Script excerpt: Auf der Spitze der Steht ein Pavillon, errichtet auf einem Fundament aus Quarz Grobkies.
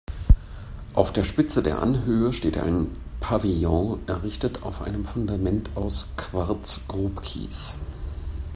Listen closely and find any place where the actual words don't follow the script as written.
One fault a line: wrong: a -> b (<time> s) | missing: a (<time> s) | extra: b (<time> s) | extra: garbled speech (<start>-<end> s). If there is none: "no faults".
extra: Anhöhe (1.8 s)